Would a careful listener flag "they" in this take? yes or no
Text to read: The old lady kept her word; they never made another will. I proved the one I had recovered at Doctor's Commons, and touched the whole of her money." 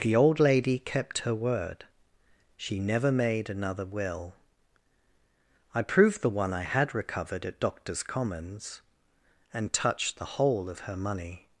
yes